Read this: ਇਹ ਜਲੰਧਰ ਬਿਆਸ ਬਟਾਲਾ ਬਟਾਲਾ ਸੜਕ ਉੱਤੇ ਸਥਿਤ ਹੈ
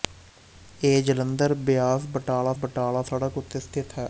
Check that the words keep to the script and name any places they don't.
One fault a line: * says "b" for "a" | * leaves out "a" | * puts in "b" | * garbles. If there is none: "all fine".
all fine